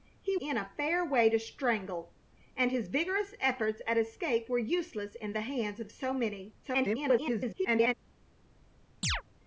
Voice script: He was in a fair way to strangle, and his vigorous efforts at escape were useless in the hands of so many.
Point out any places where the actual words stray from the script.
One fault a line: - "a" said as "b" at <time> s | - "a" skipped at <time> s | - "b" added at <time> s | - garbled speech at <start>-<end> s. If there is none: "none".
- "was" skipped at 0.3 s
- garbled speech at 6.6-7.9 s